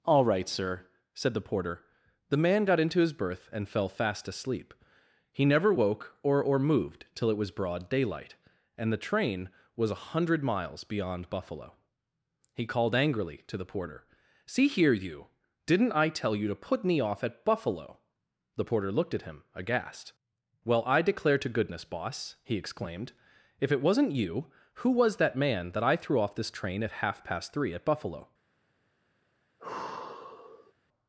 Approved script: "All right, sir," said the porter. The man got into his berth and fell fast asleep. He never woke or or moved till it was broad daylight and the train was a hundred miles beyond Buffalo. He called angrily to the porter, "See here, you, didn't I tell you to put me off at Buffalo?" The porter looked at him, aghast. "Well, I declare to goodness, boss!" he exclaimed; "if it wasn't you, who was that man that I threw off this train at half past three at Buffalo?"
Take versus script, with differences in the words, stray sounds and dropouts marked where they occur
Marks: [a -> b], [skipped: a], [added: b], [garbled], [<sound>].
"All right, sir," said the porter. The man got into his berth and fell fast asleep. He never woke or or moved till it was broad daylight and the train was a hundred miles beyond Buffalo. He called angrily to the porter, "See here, you, didn't I tell you to put me off at Buffalo?" The porter looked at him, aghast. "Well, I declare to goodness, boss!" he exclaimed; "if it wasn't you, who was that man that I threw off this train at half past three at Buffalo?" [sigh]